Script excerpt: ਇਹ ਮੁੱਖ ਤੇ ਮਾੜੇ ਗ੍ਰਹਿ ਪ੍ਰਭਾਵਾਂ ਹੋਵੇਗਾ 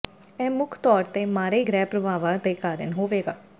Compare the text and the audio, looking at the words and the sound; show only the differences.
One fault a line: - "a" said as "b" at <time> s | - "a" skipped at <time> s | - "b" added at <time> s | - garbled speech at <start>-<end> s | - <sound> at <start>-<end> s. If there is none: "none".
- "ਤੌਰ" added at 0.8 s
- "ਦੇ ਕਾਰਨ" added at 2.4 s